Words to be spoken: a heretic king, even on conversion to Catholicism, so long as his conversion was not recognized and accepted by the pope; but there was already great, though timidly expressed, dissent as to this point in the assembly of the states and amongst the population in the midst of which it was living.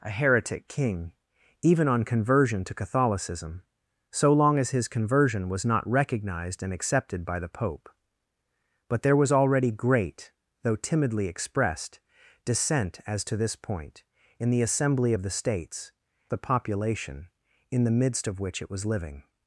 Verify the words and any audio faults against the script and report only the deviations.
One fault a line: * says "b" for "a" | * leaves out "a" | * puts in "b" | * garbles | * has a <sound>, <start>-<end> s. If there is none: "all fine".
* leaves out "and amongst"